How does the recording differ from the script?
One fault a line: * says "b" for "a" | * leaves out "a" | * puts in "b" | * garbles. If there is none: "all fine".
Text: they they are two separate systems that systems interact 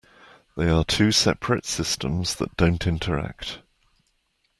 * leaves out "they"
* says "don't" for "systems"